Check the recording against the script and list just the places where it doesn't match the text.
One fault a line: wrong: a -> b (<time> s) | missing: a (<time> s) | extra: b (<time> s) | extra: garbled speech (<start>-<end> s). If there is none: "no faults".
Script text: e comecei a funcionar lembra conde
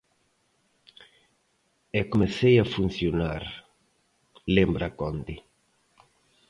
no faults